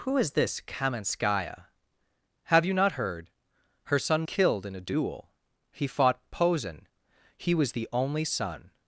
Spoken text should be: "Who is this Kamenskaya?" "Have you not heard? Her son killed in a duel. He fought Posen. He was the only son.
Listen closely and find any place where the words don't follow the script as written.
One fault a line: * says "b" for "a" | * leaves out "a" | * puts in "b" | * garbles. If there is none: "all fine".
all fine